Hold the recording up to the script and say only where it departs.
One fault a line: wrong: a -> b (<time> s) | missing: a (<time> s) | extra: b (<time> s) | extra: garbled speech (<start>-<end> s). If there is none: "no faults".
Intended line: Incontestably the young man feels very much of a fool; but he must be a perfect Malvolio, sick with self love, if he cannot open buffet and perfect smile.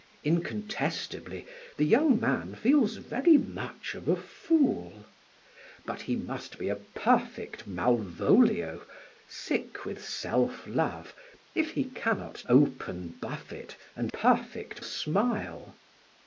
no faults